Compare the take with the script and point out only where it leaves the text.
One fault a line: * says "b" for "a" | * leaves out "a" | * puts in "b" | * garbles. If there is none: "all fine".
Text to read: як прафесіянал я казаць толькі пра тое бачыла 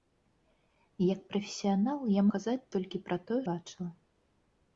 all fine